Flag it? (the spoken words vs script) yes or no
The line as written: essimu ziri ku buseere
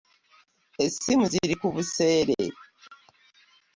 no